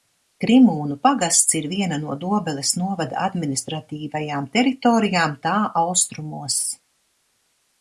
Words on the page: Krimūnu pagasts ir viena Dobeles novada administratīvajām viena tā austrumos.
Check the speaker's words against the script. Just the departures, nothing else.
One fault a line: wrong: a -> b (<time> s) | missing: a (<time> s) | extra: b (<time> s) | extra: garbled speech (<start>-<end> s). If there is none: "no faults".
extra: no (2.0 s)
wrong: viena -> teritorijām (4.6 s)